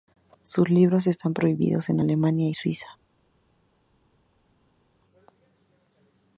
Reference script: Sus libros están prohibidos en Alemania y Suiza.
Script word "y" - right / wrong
right